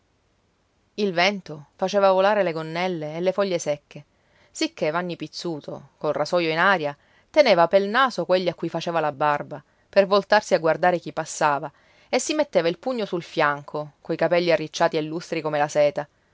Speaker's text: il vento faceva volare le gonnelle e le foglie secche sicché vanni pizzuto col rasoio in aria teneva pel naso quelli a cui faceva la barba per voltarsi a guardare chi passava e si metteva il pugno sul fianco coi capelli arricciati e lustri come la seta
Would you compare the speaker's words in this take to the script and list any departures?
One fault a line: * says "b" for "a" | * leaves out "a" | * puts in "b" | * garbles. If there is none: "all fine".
all fine